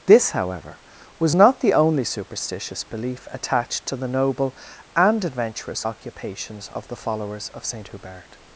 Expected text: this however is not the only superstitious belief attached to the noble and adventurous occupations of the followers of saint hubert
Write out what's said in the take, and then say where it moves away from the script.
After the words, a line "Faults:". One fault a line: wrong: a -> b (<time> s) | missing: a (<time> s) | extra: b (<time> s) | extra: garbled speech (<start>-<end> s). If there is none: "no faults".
this however was not the only superstitious belief attached to the noble and adventurous occupations of the followers of saint hubert
Faults:
wrong: is -> was (1.2 s)